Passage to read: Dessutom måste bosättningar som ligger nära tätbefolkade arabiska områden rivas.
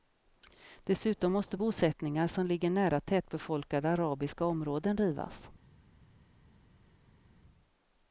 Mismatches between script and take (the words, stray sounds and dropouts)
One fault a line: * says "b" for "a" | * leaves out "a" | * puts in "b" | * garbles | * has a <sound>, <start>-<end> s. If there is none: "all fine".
all fine